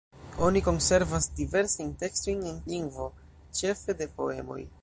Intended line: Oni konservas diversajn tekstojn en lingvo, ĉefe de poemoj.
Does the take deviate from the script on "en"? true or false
false